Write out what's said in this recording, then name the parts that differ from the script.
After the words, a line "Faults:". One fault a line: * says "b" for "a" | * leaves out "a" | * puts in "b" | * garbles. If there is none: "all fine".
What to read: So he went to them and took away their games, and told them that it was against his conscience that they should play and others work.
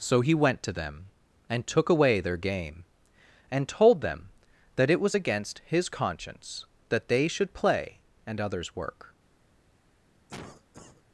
So he went to them and took away their game, and told them that it was against his conscience that they should play and others work.
Faults:
* says "game" for "games"